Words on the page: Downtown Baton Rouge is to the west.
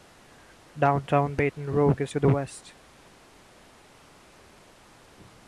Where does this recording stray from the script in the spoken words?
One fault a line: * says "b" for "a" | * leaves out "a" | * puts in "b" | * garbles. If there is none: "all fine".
all fine